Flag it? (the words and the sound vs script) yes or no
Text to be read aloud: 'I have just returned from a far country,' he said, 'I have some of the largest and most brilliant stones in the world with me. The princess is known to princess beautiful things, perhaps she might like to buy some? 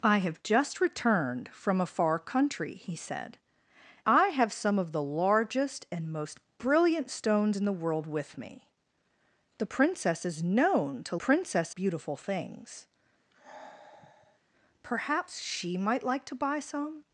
yes